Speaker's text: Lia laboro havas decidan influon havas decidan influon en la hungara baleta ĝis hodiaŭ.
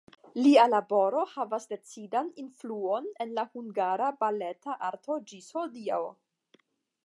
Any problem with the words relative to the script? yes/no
yes